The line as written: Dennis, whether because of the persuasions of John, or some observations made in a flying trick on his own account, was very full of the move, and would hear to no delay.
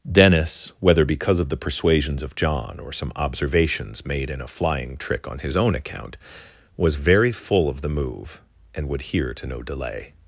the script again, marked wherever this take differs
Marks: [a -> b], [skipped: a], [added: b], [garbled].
Dennis, whether because of the persuasions of John, or some observations made in a flying trick on his own account, was very full of the move, and would hear to no delay.